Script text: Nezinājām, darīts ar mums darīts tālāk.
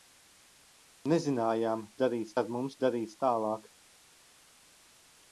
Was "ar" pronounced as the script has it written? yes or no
yes